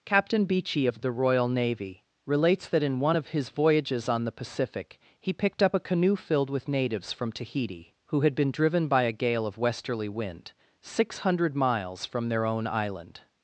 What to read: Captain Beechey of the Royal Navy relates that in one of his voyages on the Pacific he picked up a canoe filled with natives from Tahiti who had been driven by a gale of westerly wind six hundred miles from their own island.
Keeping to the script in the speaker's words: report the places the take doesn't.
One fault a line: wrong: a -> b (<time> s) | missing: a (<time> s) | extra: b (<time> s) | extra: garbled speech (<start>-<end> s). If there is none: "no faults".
no faults